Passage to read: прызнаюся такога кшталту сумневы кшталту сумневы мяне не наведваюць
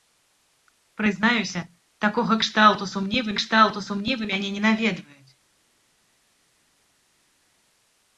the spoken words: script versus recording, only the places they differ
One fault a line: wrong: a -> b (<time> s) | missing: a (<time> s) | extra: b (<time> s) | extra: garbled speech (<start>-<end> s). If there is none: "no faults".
no faults